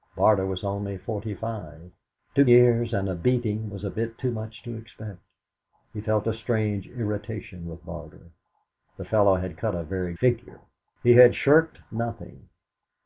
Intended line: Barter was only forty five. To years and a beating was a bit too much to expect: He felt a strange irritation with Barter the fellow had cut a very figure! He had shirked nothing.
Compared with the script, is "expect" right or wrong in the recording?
right